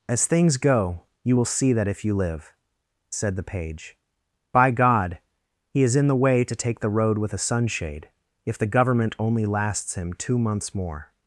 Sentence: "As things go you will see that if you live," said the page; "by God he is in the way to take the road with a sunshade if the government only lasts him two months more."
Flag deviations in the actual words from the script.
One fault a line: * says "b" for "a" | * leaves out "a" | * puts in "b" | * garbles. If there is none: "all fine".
all fine